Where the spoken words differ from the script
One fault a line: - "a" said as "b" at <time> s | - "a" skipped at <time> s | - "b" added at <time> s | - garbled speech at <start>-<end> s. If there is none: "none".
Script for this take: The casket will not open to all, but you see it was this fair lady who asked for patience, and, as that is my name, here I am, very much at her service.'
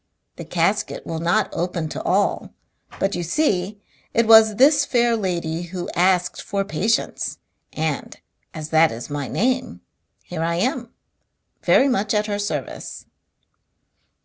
none